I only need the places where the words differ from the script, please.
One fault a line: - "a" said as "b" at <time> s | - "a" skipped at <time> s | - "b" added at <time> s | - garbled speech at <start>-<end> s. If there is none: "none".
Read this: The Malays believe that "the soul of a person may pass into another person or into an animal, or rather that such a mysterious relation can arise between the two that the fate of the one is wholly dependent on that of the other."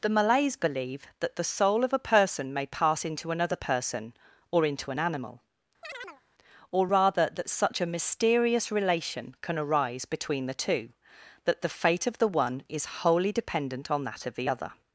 none